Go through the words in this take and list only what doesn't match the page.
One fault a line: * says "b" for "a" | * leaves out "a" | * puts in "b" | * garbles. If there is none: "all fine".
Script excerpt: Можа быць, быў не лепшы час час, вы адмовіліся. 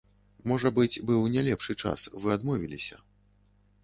* leaves out "час"